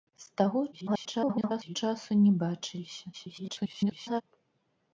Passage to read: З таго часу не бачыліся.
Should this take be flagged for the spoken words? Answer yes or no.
yes